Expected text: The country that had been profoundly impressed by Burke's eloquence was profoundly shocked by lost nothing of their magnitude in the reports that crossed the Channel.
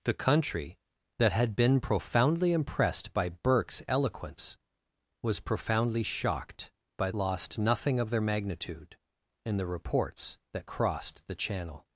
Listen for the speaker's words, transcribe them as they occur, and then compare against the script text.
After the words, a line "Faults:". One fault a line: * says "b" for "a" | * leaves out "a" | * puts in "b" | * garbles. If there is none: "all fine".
The country that had been profoundly impressed by Burke's eloquence was profoundly shocked by lost nothing of their magnitude in the reports that crossed the Channel.
Faults:
all fine